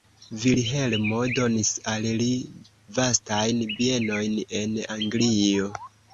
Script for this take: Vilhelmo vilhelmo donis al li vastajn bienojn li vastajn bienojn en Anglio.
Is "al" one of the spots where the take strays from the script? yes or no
no